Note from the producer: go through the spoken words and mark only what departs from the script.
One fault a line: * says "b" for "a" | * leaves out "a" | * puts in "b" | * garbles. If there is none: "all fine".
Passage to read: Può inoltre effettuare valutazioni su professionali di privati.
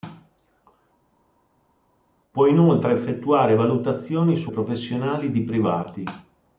all fine